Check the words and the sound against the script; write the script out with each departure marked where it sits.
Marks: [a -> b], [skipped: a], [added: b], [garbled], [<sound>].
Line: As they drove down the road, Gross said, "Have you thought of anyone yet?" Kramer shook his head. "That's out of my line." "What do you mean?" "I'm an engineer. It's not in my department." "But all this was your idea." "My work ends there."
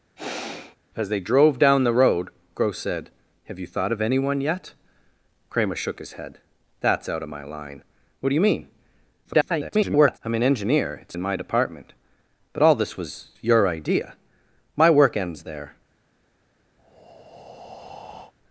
[sigh] As they drove down the road, Gross said, "Have you thought of anyone yet?" Kramer shook his head. "That's out of my line." "What do you mean?" [garbled] "I'm an engineer. It's [skipped: not] in my department." "But all this was your idea." "My work ends there." [breath]